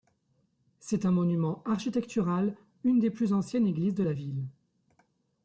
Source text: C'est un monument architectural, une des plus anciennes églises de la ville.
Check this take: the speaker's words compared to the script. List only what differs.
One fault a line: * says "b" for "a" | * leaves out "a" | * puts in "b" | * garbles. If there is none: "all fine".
all fine